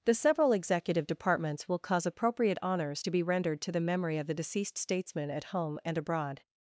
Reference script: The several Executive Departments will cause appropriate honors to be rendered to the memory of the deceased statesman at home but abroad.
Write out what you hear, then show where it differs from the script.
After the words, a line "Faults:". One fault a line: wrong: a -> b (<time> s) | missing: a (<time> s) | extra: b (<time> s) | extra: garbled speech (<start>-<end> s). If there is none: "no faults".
The several Executive Departments will cause appropriate honors to be rendered to the memory of the deceased statesman at home and abroad.
Faults:
wrong: but -> and (5.8 s)